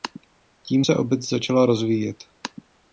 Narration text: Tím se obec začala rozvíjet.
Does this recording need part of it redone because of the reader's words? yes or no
no